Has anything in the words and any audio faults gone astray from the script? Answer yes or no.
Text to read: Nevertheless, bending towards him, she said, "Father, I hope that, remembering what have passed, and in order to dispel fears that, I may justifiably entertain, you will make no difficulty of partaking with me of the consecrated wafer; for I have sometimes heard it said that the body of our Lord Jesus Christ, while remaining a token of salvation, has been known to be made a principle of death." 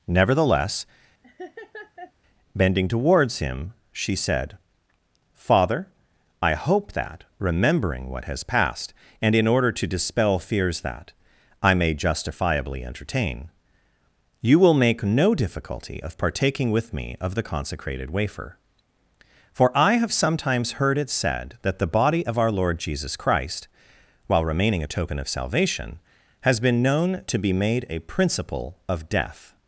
yes